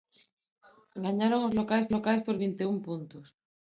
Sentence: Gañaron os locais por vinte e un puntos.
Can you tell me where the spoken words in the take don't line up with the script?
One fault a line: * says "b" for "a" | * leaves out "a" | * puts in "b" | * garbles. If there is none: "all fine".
* puts in "locais"